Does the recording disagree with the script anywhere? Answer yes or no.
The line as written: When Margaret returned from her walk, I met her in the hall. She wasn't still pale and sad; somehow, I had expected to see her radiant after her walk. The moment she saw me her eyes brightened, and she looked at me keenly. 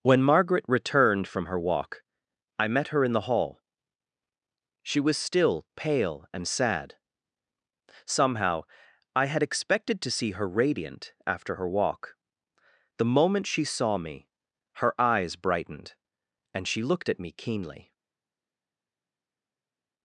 yes